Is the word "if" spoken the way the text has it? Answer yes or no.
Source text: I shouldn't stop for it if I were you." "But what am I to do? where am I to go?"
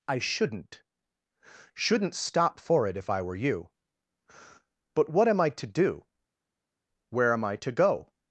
yes